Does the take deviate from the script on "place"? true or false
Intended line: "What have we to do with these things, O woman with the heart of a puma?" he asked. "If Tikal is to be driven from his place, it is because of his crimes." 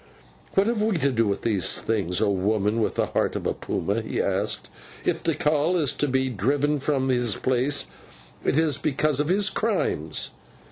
false